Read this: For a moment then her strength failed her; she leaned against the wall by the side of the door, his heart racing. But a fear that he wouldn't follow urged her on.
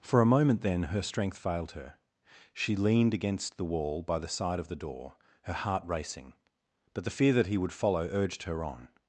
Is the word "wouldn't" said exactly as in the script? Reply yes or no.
no